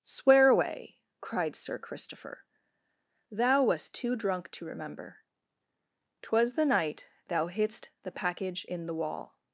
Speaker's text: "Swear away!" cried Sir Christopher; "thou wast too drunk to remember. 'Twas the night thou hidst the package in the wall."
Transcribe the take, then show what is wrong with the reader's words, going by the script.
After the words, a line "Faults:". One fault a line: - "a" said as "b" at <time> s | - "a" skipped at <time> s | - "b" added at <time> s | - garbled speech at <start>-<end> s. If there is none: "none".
"Swear away!" cried Sir Christopher; "thou wast too drunk to remember. 'Twas the night thou hidst the package in the wall."
Faults:
none